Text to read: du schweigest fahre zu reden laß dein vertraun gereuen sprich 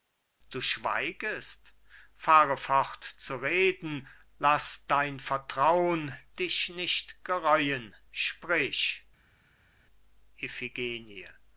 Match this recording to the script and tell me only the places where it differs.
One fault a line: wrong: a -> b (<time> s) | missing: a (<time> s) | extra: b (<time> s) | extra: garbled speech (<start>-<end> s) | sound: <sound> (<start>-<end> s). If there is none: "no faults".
extra: fort (2.6 s)
extra: dich nicht (6.4 s)